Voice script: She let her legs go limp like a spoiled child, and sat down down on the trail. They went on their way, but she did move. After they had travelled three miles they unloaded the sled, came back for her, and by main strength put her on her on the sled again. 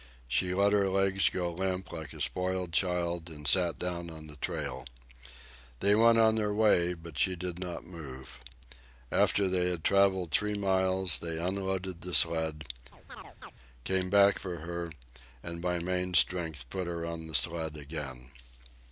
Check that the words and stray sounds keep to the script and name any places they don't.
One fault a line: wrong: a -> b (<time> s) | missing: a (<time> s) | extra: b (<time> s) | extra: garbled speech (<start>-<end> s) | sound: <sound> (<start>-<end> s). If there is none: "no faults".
missing: down (4.1 s)
extra: not (7.6 s)
sound: chirp (12.9-13.5 s)
missing: her on (17.3 s)